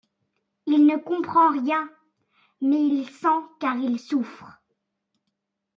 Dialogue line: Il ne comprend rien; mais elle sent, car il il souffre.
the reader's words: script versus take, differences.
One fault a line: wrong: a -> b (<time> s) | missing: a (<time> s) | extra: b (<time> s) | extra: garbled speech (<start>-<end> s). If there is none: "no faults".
wrong: elle -> il (2.8 s)
missing: il (4.0 s)